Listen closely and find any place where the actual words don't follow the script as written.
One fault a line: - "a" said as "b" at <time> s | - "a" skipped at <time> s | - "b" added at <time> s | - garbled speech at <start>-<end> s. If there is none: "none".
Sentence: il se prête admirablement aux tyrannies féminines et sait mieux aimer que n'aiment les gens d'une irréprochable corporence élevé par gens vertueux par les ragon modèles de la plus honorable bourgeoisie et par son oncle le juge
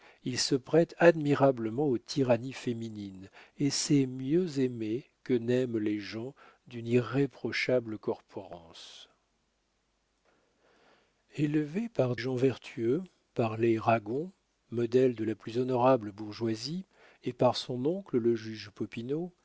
none